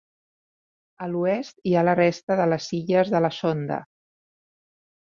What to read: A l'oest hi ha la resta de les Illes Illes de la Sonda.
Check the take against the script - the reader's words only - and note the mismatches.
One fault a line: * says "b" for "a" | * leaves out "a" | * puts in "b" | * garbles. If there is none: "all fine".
* leaves out "Illes"